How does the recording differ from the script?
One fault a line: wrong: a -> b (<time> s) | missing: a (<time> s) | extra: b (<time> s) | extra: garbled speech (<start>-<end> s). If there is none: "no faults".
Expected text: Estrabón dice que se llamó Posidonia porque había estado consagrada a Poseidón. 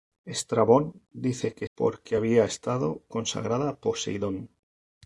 missing: se llamó Posidonia (1.7 s)